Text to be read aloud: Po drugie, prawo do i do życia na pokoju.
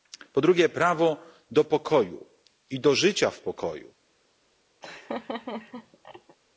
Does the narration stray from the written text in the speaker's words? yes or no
yes